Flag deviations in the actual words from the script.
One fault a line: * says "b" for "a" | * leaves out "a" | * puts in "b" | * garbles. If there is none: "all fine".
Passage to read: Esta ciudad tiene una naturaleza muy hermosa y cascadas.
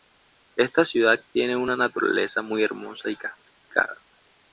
all fine